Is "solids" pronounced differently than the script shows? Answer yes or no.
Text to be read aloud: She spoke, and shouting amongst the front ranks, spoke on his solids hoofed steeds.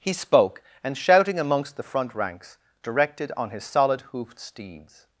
yes